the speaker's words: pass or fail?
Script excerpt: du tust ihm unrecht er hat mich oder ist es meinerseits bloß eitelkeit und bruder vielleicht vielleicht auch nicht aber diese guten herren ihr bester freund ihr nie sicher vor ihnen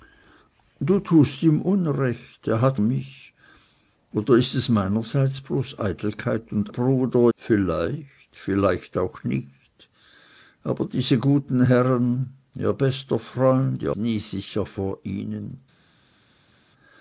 pass